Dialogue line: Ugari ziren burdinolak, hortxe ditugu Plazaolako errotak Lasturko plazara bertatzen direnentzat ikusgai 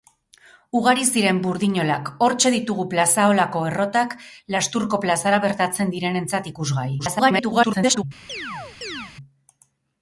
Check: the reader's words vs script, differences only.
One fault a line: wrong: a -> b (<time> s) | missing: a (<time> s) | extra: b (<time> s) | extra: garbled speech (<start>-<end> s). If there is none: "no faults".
extra: garbled speech (7.0-8.0 s)